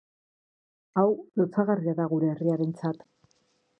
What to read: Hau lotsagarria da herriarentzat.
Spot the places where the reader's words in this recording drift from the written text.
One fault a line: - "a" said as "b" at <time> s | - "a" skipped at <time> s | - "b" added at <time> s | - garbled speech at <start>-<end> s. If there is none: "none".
- "gure" added at 2.1 s